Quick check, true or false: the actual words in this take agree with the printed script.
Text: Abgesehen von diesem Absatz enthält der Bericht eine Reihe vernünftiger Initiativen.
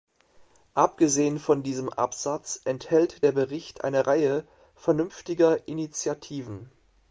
true